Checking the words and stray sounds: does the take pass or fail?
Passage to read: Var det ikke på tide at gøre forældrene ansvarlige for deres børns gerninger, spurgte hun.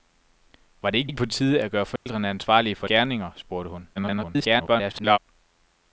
fail